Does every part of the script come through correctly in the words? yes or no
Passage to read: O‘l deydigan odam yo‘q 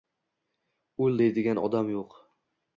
yes